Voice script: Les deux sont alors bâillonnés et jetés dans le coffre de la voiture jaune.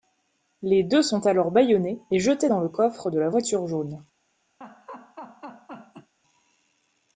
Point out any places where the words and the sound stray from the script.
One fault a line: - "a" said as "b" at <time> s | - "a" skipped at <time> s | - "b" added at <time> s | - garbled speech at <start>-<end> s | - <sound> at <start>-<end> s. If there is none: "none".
- laugh at 4.6-6.1 s